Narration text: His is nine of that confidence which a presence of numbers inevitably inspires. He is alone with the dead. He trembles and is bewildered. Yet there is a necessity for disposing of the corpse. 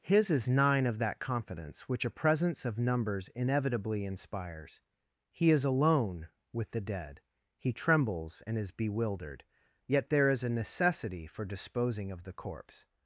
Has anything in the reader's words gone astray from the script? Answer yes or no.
no